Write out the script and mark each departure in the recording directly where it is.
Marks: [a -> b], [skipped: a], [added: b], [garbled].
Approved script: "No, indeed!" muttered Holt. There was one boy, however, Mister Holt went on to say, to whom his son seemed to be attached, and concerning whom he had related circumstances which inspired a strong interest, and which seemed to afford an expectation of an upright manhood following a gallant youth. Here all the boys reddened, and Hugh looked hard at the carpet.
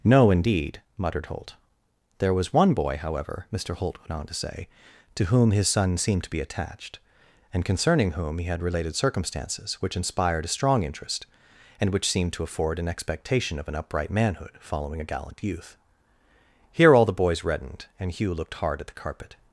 "No, indeed!" muttered Holt. There was one boy, however, Mister Holt went on to say, to whom his son seemed to be attached, and concerning whom he had related circumstances which inspired a strong interest, and which seemed to afford an expectation of an upright manhood following a gallant youth. Here all the boys reddened, and Hugh looked hard at the carpet.